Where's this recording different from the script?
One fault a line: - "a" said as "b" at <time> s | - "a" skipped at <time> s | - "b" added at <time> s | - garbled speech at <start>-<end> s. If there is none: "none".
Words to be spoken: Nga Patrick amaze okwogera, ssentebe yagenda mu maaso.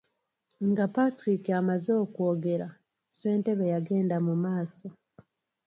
none